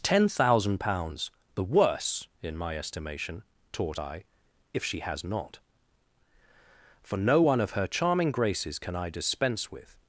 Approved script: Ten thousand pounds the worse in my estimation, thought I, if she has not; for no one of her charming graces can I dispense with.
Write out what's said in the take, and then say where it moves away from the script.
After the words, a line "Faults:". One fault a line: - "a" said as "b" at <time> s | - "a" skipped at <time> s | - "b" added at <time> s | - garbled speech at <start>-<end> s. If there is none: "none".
Ten thousand pounds the worse in my estimation, taught I, if she has not; for no one of her charming graces can I dispense with.
Faults:
- "thought" said as "taught" at 3.7 s